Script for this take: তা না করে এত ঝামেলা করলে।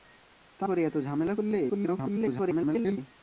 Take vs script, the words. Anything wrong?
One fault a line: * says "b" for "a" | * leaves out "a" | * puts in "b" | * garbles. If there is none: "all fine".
* leaves out "না"
* garbles